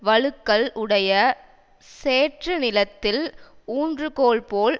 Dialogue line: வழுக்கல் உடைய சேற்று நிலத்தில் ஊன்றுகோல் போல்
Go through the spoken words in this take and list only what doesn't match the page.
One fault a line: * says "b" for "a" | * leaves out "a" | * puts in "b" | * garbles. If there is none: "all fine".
all fine